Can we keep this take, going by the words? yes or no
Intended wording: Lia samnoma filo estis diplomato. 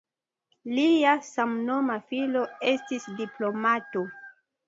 yes